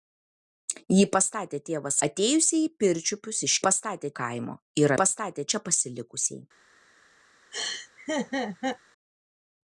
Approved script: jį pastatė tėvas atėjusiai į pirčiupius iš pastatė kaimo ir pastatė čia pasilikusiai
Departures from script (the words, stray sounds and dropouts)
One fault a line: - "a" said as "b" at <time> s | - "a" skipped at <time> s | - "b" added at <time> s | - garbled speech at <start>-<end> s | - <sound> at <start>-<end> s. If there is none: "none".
- laugh at 7.5-8.8 s